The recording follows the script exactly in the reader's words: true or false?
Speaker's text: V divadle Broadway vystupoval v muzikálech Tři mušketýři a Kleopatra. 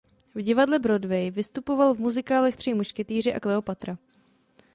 true